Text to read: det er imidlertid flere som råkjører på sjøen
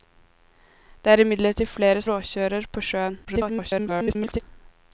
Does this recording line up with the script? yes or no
no